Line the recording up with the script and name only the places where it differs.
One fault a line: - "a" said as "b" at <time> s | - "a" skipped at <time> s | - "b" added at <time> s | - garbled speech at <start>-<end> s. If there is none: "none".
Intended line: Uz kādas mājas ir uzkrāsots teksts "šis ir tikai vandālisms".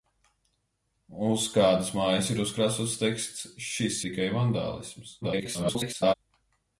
- "ir" skipped at 4.0 s
- garbled speech at 5.2-6.1 s